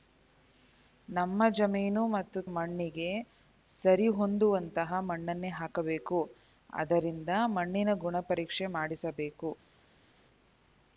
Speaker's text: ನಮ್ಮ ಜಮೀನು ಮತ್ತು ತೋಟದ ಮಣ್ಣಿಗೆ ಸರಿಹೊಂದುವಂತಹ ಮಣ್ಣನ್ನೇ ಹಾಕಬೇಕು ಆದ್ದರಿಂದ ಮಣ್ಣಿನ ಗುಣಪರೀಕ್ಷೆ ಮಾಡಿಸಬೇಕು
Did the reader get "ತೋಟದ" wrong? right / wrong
wrong